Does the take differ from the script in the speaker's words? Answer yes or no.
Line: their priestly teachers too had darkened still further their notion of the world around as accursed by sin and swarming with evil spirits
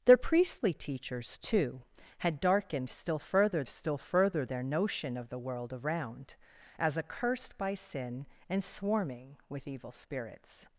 yes